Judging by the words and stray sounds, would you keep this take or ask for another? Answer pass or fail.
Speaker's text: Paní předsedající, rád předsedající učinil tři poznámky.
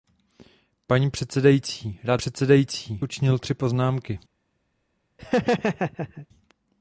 fail